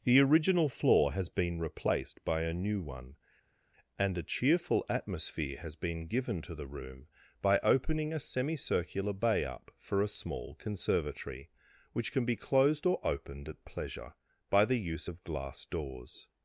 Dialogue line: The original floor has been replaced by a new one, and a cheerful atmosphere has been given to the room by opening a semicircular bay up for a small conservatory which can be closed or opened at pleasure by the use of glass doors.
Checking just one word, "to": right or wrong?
right